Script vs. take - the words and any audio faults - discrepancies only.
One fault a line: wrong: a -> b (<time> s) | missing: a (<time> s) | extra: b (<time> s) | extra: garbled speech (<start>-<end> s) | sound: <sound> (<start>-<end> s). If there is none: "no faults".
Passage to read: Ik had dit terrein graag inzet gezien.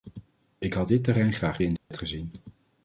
sound: dropout (1.8-1.9 s)